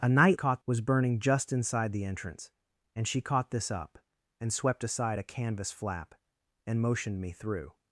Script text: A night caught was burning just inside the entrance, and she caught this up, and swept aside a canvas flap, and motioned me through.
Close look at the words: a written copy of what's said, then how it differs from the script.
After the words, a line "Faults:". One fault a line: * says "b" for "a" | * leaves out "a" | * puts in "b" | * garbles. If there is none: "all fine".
A night caught was burning just inside the entrance, and she caught this up, and swept aside a canvas flap, and motioned me through.
Faults:
all fine